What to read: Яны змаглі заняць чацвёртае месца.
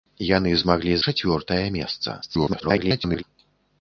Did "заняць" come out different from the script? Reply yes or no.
yes